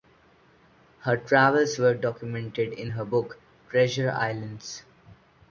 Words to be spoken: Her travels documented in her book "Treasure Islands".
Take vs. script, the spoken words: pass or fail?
fail